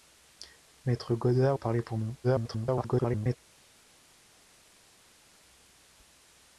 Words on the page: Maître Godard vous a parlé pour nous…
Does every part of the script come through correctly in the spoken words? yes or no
no